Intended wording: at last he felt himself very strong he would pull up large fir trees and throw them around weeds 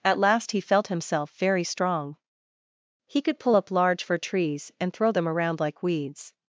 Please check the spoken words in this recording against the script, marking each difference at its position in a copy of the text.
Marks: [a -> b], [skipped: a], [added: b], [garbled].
at last he felt himself very strong he [would -> could] pull up large fir trees and throw them around [added: like] weeds